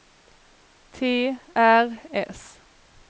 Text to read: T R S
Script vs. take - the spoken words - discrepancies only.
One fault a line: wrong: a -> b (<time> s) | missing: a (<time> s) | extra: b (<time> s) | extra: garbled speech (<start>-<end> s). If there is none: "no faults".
no faults